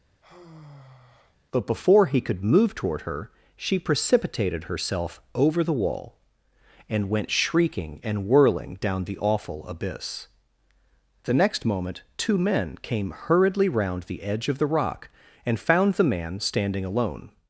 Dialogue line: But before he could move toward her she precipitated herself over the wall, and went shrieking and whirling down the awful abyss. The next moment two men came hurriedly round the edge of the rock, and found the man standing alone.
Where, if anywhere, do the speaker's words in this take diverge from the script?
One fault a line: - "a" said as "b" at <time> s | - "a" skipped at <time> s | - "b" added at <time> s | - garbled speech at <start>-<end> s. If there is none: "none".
none